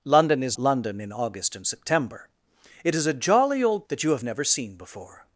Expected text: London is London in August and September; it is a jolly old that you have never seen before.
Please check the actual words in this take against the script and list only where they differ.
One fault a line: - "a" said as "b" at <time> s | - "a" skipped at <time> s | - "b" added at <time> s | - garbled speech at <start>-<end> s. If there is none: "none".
none